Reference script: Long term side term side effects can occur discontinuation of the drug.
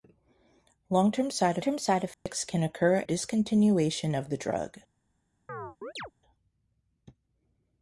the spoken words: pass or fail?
pass